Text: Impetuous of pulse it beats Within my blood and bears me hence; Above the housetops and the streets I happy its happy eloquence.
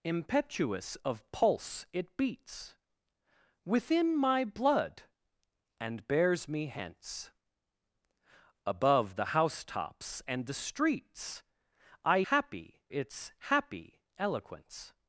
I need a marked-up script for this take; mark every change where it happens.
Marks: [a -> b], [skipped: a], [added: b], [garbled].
Impetuous of pulse it beats Within my blood and bears me hence; Above the housetops and the streets I happy its happy eloquence.